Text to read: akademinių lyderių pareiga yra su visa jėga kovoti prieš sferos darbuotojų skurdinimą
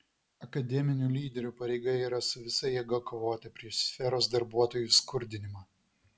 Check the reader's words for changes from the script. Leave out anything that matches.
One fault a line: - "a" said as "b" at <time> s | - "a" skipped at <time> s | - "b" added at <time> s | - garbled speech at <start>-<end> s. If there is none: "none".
none